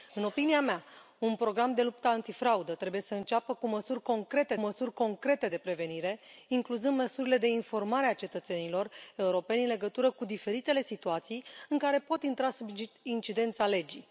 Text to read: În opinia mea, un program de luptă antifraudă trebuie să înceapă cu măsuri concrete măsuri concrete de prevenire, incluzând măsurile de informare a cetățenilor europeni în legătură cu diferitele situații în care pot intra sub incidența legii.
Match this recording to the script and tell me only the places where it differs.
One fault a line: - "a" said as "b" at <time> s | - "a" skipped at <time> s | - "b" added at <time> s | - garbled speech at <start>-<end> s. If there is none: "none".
none